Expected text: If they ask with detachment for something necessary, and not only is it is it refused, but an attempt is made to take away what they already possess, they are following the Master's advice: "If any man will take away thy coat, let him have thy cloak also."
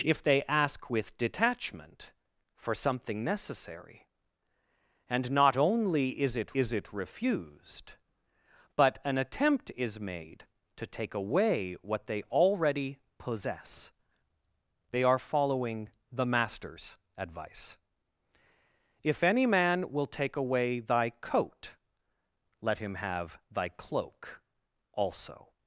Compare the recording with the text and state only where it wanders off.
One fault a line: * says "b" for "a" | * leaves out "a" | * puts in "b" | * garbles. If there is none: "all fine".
all fine